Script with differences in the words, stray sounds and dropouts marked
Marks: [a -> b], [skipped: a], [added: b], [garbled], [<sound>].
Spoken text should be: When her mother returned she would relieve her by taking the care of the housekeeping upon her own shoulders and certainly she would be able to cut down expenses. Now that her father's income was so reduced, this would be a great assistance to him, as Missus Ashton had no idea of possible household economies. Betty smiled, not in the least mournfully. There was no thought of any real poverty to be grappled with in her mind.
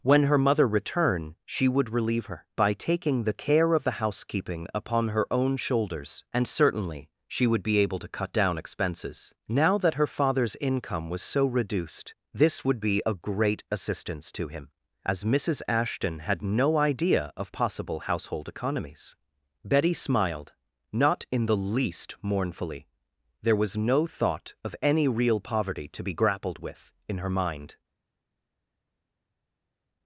When her mother returned she would relieve her by taking the care of the housekeeping upon her own shoulders and certainly she would be able to cut down expenses. Now that her father's income was so reduced, this would be a great assistance to him, as Missus Ashton had no idea of possible household economies. Betty smiled, not in the least mournfully. There was no thought of any real poverty to be grappled with in her mind.